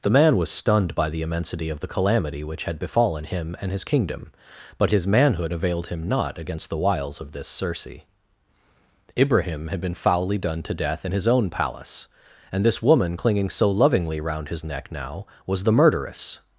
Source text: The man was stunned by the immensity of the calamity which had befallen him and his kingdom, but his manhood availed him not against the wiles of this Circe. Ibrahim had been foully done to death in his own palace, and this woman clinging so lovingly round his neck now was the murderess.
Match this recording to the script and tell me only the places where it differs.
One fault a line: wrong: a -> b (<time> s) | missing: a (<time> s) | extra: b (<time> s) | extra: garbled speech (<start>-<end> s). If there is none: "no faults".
no faults